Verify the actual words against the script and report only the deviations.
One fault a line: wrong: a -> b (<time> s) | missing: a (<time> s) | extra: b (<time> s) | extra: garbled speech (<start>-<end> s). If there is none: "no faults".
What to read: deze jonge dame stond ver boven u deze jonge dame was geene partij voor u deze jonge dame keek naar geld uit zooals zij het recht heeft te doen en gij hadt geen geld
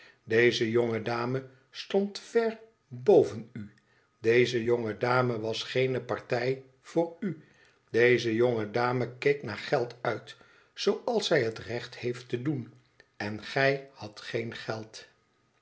no faults